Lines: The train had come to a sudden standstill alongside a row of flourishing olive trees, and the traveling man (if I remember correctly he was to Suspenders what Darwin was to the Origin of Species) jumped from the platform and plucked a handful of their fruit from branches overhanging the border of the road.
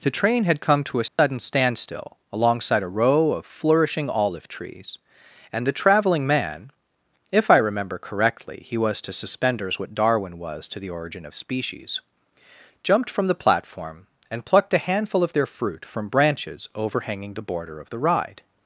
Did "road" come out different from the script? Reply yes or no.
yes